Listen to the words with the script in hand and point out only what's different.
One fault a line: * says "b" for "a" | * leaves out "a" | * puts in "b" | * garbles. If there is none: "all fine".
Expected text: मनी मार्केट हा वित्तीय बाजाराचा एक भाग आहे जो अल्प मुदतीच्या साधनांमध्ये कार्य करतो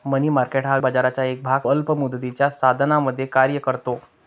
* leaves out "वित्तीय"
* leaves out "आहे जो"